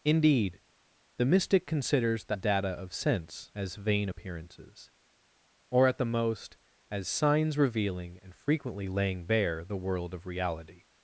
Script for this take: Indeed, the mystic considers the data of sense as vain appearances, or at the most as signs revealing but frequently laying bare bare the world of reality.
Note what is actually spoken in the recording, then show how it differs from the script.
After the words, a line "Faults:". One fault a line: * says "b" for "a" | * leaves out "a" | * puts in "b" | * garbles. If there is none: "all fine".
Indeed, the mystic considers the data of sense as vain appearances, or at the most as signs revealing and frequently laying bare the world of reality.
Faults:
* says "and" for "but"
* leaves out "bare"